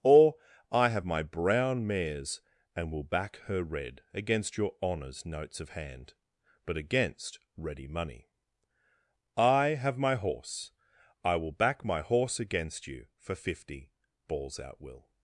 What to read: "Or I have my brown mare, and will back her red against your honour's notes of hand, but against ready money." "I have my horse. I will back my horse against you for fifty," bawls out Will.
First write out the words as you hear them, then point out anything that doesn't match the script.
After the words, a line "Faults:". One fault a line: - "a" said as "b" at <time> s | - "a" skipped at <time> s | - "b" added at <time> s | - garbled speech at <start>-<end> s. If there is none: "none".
"Or I have my brown mares, and will back her red against your honour's notes of hand, but against ready money." "I have my horse. I will back my horse against you for fifty," bawls out Will.
Faults:
- "mare" said as "mares" at 1.9 s